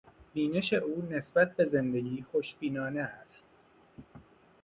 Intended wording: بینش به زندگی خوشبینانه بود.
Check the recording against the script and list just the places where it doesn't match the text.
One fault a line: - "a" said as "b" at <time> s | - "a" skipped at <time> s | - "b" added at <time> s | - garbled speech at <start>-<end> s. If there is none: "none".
- "او نسبت" added at 0.7 s
- "بود" said as "است" at 3.0 s